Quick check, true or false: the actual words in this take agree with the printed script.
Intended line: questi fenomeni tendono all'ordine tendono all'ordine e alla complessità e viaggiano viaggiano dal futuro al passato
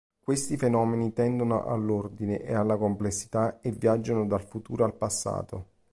false